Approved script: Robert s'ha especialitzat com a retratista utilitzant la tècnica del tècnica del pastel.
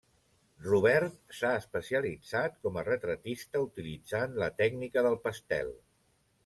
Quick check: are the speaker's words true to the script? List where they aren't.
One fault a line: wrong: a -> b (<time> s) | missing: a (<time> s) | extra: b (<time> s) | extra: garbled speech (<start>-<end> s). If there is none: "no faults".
missing: tècnica del (5.2 s)